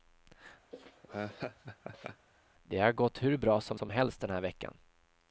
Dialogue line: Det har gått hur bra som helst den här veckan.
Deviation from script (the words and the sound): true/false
true